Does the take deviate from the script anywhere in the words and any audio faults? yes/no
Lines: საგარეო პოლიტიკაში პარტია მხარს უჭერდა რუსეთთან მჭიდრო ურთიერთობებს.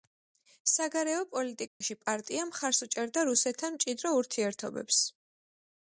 yes